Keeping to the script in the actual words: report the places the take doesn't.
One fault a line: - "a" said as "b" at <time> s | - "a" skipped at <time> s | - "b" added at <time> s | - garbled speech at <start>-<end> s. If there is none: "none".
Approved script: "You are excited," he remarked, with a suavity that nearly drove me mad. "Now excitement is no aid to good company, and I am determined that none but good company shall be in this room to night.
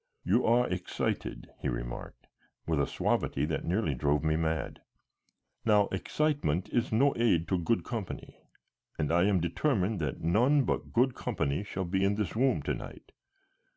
none